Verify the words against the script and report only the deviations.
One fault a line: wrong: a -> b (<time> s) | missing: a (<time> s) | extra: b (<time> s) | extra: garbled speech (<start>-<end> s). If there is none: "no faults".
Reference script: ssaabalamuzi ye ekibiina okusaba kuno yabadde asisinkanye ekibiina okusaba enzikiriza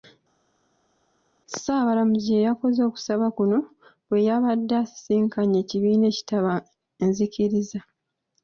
wrong: ekibiina -> yakoze (2.5 s)
extra: bwe (4.1 s)
wrong: okusaba -> ekitaba (6.1 s)